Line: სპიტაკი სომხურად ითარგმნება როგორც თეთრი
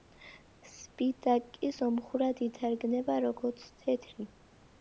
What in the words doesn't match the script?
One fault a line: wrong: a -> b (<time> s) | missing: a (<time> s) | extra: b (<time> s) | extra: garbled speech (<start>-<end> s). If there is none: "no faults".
no faults